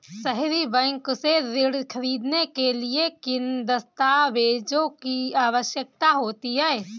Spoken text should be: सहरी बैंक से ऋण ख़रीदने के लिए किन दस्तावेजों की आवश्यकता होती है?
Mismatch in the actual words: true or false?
false